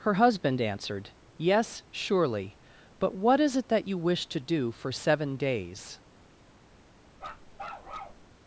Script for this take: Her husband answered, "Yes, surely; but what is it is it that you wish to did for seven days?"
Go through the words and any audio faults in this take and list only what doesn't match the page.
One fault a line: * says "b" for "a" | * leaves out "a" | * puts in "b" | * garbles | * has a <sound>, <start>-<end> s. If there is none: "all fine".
* leaves out "is it"
* says "do" for "did"
* has a bark, 7.2-8.2 s